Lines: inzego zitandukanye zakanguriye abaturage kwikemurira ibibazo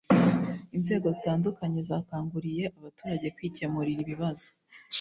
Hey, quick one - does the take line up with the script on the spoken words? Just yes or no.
yes